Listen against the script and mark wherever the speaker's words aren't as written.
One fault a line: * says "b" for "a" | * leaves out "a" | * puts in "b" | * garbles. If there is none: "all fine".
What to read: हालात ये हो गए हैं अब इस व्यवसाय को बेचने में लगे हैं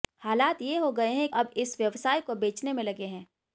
all fine